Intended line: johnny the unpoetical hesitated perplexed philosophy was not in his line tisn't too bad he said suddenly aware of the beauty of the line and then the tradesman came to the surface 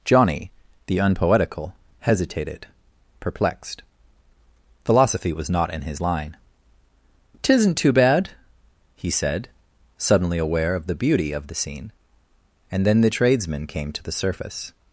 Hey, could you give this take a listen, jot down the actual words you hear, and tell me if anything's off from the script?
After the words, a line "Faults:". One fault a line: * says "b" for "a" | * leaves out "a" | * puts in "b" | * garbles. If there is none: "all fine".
johnny the unpoetical hesitated perplexed philosophy was not in his line tisn't too bad he said suddenly aware of the beauty of the scene and then the tradesman came to the surface
Faults:
* says "scene" for "line"